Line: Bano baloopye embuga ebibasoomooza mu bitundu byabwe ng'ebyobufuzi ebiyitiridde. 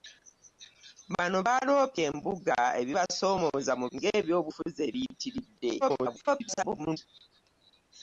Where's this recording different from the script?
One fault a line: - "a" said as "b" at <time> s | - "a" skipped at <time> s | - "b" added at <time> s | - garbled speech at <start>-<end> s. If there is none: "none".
- "bitundu byabwe" skipped at 3.9 s
- garbled speech at 5.8-7.0 s